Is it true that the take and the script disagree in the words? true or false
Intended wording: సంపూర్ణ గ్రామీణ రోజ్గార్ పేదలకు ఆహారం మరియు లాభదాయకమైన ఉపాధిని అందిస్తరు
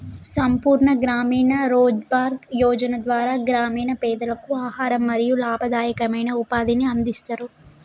true